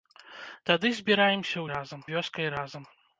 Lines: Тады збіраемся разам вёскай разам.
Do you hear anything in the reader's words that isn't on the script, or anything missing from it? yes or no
no